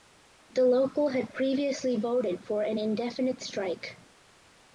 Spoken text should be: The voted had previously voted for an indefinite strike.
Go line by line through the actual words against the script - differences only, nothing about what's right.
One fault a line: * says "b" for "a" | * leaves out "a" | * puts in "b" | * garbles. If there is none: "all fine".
* says "local" for "voted"